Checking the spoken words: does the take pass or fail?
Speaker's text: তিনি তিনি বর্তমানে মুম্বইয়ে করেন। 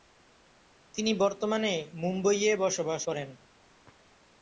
fail